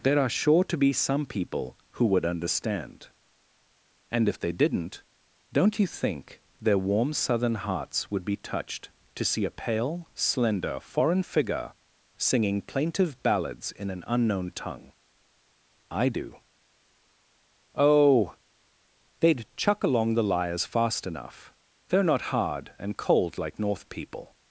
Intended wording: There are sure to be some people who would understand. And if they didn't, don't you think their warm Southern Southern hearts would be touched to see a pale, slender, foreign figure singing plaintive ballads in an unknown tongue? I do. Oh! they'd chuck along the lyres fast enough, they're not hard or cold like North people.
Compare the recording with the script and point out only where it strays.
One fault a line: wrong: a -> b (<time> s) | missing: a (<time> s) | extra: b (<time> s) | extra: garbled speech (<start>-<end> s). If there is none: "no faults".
missing: Southern (7.5 s)
wrong: or -> and (22.8 s)